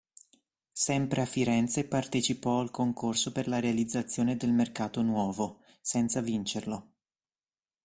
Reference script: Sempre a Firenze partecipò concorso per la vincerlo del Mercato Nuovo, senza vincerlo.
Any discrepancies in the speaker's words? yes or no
yes